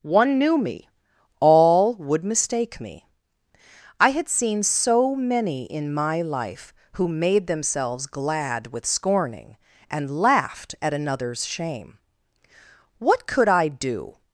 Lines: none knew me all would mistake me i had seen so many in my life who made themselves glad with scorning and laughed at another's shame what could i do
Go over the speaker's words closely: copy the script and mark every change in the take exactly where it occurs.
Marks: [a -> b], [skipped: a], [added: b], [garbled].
[none -> one] knew me all would mistake me i had seen so many in my life who made themselves glad with scorning and laughed at another's shame what could i do